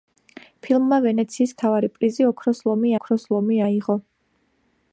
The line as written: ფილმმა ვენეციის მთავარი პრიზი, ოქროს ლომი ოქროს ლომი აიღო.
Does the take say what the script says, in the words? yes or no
yes